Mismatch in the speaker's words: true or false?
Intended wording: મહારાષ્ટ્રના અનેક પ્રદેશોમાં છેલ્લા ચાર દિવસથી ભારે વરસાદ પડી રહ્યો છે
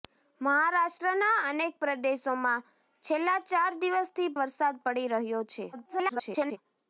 true